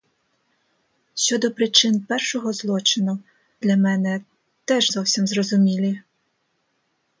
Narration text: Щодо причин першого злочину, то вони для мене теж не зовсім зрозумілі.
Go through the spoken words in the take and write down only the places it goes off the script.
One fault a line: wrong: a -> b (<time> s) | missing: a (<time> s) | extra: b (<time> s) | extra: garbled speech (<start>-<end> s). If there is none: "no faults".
missing: то вони (3.2 s)
missing: не (4.9 s)